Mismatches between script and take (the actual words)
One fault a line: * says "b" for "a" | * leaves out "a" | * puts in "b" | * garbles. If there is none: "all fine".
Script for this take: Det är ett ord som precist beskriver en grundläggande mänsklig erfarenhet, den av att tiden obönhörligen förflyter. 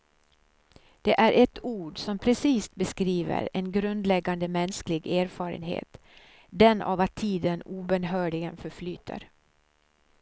all fine